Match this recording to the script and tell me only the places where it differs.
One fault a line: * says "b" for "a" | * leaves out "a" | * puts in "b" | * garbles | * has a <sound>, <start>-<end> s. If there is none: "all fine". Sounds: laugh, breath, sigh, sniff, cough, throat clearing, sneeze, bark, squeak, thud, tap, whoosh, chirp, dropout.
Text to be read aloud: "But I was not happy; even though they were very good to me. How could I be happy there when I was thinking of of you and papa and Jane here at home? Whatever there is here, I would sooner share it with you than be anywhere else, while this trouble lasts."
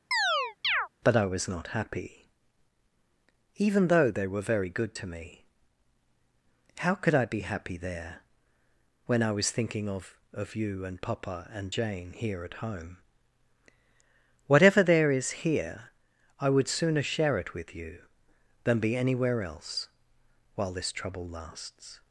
* has a chirp, 0.1-0.9 s